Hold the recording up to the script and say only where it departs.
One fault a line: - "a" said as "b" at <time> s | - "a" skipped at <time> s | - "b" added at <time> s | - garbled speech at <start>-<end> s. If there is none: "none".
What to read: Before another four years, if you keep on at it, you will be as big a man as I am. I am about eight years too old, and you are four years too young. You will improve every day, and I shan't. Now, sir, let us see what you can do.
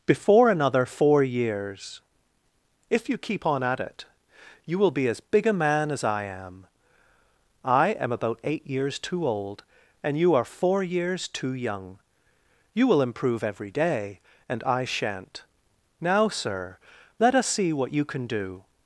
none